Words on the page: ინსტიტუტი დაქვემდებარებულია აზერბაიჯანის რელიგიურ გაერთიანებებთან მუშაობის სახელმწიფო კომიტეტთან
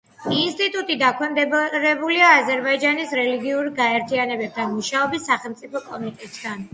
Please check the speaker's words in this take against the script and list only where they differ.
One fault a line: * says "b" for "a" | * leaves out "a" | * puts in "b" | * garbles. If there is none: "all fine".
all fine